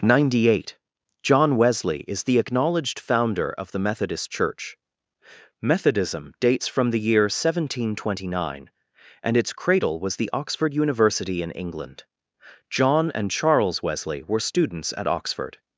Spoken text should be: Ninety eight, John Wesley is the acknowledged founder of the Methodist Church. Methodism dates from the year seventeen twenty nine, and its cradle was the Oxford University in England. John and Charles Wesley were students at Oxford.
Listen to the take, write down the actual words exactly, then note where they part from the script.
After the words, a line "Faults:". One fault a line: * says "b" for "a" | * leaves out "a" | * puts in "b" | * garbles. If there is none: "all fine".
Ninety eight, John Wesley is the acknowledged founder of the Methodist Church. Methodism dates from the year seventeen twenty nine, and its cradle was the Oxford University in England. John and Charles Wesley were students at Oxford.
Faults:
all fine